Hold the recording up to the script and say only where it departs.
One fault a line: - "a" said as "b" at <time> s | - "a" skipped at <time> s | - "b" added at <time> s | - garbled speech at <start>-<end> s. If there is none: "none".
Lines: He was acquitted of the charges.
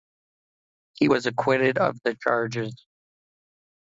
none